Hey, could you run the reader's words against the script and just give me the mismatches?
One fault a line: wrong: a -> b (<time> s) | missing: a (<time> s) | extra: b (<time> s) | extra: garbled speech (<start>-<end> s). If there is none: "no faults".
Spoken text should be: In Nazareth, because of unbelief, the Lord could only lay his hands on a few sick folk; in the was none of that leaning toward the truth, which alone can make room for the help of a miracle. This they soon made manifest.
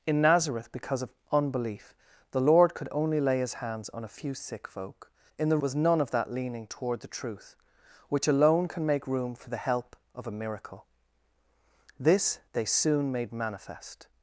no faults